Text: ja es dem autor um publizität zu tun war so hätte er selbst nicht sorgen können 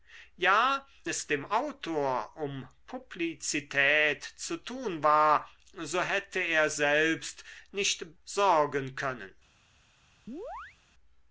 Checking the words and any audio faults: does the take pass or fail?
fail